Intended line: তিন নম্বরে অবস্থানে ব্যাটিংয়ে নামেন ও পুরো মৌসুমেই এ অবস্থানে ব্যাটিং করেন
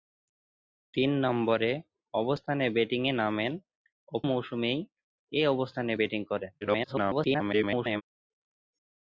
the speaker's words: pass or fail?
fail